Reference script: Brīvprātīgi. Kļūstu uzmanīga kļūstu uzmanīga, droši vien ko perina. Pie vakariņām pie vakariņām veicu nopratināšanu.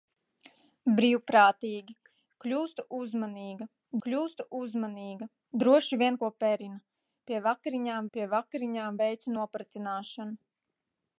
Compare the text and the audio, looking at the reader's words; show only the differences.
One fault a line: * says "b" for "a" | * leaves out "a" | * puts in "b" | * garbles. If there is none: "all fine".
all fine